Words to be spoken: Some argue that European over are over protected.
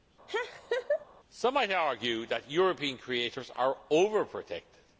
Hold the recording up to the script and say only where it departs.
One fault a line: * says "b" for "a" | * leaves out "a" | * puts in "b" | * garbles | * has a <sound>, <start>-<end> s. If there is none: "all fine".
* has a laugh, 0.3-1.1 s
* puts in "might"
* says "creators" for "over"